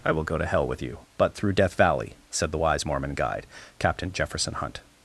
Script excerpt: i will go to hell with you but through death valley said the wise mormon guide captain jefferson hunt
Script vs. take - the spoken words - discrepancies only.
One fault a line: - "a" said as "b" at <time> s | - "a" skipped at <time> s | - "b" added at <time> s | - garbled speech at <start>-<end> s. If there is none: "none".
none